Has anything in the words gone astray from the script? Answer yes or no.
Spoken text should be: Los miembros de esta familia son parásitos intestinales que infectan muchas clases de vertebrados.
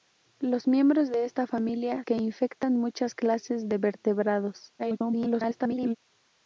yes